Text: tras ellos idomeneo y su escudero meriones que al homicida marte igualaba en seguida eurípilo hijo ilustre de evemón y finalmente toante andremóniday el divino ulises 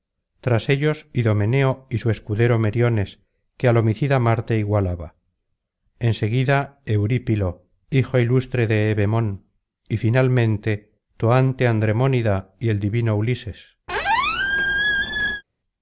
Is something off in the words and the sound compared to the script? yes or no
yes